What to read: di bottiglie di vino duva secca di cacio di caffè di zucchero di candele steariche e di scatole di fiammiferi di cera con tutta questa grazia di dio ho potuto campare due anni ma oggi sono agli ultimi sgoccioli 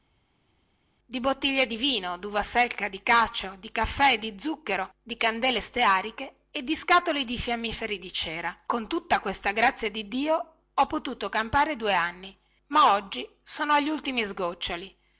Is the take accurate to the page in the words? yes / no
yes